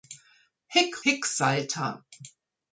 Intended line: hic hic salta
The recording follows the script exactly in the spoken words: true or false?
true